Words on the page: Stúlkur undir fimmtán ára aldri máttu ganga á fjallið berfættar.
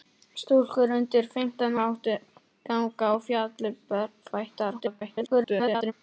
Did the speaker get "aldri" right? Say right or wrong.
wrong